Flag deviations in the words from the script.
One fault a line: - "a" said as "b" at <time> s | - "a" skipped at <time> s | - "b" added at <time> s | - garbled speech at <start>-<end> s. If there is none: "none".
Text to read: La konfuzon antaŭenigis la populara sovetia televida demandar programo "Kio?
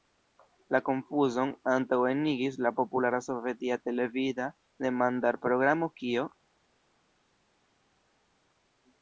none